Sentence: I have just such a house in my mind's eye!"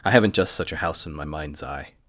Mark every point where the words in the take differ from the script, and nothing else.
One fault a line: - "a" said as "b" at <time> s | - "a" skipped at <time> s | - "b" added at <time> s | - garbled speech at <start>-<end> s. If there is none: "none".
- "have" said as "haven't" at 0.1 s